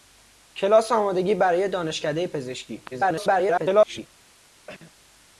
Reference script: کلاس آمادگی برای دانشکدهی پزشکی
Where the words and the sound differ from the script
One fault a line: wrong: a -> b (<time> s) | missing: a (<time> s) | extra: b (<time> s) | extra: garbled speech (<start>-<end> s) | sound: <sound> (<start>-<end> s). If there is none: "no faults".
extra: garbled speech (2.9-4.1 s)
sound: cough (4.7-4.9 s)